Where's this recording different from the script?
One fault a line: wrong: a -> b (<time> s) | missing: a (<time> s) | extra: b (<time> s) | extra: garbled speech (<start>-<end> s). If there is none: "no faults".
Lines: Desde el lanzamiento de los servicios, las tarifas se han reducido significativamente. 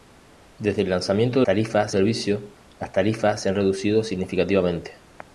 wrong: los -> tarifas (1.4 s)